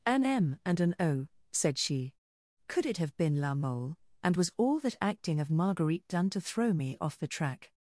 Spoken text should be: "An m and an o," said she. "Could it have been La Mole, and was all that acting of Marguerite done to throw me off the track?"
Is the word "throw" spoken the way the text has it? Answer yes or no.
yes